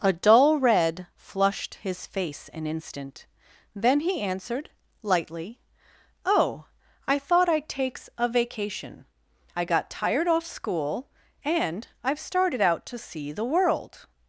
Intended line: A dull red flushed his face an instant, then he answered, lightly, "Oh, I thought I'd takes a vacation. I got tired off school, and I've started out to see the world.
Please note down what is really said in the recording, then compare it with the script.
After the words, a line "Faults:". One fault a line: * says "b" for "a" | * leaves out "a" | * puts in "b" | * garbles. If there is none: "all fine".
A dull red flushed his face an instant, then he answered, lightly, "Oh, I thought I'd takes a vacation. I got tired off school, and I've started out to see the world.
Faults:
all fine